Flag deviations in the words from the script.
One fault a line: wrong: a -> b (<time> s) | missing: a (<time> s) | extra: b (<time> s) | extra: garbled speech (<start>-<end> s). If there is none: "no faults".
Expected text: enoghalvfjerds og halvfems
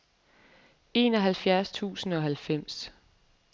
extra: tusind (1.7 s)